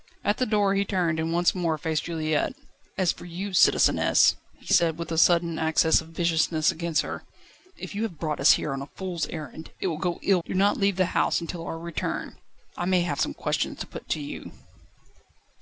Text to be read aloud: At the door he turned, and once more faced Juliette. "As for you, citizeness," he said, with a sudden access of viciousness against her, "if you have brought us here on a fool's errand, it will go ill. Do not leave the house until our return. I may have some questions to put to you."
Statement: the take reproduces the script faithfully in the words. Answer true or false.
true